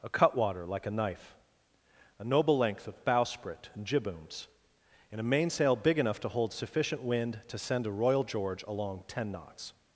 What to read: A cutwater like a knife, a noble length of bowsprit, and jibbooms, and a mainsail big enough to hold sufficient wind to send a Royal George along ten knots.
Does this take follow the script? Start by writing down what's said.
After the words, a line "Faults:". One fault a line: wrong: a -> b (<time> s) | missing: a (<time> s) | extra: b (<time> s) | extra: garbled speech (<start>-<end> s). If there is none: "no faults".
A cutwater like a knife, a noble length of bowsprit, and jibbooms, and a mainsail big enough to hold sufficient wind to send a Royal George along ten knots.
Faults:
no faults